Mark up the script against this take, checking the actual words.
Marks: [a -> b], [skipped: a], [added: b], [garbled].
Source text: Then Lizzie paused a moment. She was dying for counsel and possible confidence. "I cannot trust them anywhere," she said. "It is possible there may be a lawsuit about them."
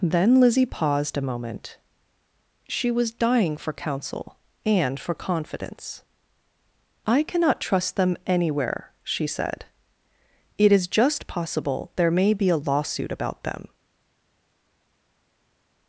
Then Lizzie paused a moment. She was dying for counsel and [possible -> for] confidence. "I cannot trust them anywhere," she said. "It is [added: just] possible there may be a lawsuit about them."